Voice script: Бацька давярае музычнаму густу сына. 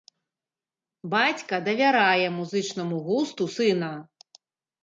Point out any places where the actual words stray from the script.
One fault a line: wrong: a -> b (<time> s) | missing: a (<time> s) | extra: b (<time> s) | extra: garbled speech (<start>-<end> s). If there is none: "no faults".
no faults